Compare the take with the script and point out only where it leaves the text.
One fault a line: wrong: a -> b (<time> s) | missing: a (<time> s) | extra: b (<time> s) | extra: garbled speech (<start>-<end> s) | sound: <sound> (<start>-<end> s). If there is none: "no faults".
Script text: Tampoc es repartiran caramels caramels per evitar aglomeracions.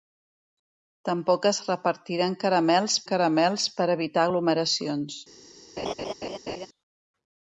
sound: laugh (5.8-6.7 s)